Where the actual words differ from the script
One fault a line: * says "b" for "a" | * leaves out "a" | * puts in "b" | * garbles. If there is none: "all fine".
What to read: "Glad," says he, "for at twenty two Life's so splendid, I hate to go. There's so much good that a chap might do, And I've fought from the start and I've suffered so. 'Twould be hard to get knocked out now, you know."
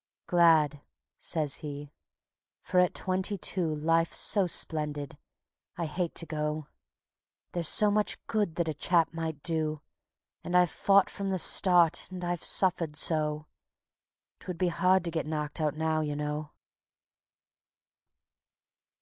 all fine